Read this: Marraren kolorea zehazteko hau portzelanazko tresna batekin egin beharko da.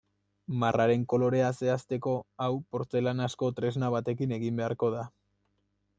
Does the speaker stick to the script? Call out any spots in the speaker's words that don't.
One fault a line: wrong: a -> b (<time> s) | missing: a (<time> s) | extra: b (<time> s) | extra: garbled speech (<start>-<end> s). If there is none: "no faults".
no faults